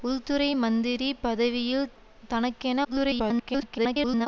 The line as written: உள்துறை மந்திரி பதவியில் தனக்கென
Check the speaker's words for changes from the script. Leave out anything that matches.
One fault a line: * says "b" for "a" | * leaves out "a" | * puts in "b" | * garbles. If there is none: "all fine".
* garbles